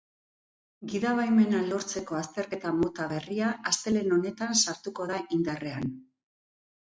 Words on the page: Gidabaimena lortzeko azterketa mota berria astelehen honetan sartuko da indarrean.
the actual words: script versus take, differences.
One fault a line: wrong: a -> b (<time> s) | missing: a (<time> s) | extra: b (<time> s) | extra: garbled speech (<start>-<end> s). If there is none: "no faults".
no faults